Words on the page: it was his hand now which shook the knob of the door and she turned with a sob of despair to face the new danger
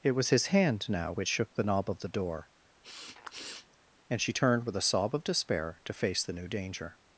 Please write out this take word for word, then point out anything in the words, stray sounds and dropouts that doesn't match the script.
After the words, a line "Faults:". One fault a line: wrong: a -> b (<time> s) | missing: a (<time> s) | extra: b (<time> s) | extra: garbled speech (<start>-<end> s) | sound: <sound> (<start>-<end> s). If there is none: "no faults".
it was his hand now which shook the knob of the door and she turned with a sob of despair to face the new danger
Faults:
sound: sniff (2.8-3.8 s)